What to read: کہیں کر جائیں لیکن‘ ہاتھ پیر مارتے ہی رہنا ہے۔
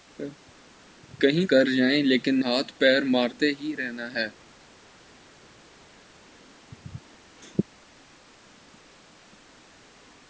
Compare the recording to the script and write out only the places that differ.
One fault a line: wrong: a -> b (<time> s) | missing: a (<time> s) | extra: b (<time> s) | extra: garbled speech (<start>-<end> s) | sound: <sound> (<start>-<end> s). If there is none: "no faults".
no faults